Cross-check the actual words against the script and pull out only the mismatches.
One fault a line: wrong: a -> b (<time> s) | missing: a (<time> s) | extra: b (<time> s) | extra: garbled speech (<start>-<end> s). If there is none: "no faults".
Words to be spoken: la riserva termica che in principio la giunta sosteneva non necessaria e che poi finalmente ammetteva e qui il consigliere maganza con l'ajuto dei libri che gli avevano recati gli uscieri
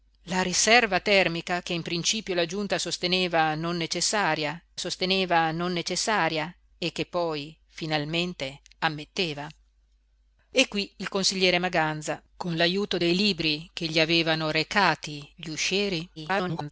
extra: sosteneva non necessaria (4.8 s)
extra: garbled speech (16.2-16.7 s)